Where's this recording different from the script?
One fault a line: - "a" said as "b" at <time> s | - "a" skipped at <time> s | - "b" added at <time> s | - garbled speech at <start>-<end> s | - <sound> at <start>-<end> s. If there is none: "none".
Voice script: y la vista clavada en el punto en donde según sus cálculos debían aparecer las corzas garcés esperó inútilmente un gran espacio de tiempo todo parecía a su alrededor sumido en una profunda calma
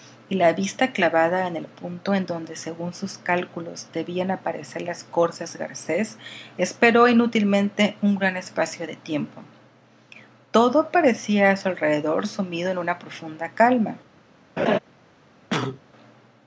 - laugh at 14.6-14.8 s
- cough at 15.5-15.8 s